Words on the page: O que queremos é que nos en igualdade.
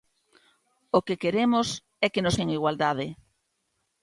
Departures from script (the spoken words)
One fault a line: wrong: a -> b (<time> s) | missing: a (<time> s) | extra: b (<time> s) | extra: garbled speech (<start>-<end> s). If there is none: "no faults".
no faults